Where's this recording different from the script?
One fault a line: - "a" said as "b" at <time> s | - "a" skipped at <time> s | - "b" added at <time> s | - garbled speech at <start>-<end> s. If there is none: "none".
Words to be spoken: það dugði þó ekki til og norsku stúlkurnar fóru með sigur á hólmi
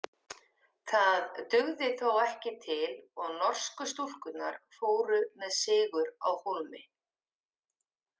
none